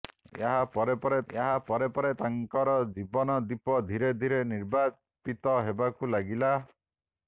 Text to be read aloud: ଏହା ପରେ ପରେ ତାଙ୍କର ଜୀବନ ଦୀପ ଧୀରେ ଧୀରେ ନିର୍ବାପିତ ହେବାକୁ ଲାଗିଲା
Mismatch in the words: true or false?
true